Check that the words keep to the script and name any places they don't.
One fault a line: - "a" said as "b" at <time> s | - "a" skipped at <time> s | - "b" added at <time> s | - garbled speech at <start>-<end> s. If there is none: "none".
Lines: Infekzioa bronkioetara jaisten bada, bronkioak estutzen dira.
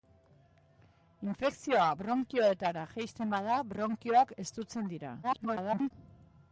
- garbled speech at 5.2-5.9 s